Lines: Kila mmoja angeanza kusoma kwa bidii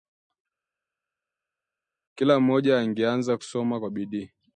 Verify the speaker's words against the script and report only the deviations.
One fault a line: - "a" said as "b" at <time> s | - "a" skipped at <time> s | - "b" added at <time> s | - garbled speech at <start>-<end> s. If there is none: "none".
none